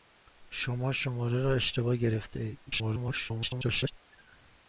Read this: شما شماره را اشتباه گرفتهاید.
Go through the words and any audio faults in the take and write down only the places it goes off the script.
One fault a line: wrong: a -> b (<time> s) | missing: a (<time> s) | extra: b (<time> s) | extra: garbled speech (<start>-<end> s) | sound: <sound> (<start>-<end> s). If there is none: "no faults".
extra: garbled speech (2.7-3.9 s)